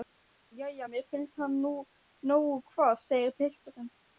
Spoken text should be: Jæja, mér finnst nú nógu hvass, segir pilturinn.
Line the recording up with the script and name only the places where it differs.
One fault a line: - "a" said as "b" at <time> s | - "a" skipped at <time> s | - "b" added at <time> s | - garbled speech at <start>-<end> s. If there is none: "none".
- "hann" added at 1.4 s